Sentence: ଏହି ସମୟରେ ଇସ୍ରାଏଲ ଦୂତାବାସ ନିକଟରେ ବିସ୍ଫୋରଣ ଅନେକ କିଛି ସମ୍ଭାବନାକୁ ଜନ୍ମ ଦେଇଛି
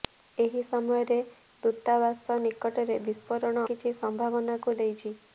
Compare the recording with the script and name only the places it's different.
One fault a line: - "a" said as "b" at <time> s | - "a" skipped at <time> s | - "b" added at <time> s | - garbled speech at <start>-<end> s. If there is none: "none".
- "ଇସ୍ରାଏଲ" skipped at 1.2 s
- "ଅନେକ" skipped at 3.7 s
- "ଜନ୍ମ" skipped at 4.8 s